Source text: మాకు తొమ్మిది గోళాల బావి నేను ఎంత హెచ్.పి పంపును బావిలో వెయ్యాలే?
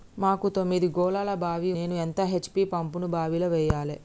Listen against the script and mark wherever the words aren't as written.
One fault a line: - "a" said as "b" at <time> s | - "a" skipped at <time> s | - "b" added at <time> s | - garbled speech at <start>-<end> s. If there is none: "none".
none